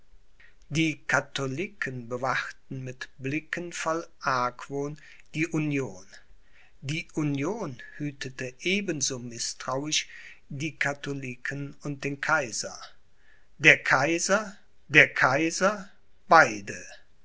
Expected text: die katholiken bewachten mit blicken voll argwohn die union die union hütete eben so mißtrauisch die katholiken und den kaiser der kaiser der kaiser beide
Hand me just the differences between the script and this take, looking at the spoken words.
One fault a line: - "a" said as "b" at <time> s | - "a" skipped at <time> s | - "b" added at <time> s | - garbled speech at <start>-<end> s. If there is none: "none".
none